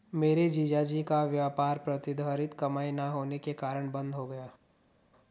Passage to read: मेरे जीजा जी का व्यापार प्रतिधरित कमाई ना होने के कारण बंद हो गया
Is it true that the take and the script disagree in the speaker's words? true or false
false